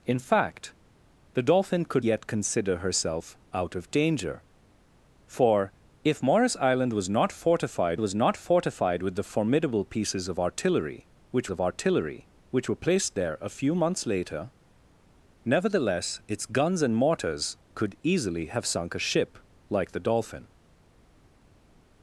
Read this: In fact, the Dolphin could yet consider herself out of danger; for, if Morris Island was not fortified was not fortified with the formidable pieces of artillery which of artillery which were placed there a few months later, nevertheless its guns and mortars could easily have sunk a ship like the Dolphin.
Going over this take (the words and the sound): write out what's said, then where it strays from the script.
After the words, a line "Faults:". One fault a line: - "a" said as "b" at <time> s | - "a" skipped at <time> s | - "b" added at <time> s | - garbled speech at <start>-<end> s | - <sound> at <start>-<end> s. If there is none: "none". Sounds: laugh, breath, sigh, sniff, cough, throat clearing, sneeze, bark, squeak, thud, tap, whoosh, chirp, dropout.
In fact, the Dolphin could yet consider herself out of danger; for, if Morris Island was not fortified was not fortified with the formidable pieces of artillery which of artillery which were placed there a few months later, nevertheless its guns and mortars could easily have sunk a ship like the Dolphin.
Faults:
none